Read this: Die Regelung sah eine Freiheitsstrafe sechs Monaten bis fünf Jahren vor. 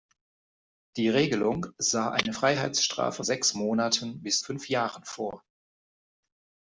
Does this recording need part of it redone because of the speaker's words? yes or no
no